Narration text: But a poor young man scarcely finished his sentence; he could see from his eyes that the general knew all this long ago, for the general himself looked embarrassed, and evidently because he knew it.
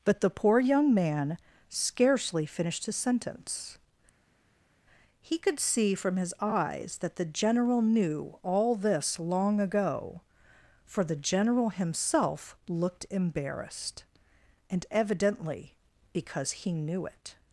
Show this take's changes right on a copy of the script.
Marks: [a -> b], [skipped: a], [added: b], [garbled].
But [a -> the] poor young man scarcely finished his sentence; he could see from his eyes that the general knew all this long ago, for the general himself looked embarrassed, and evidently because he knew it.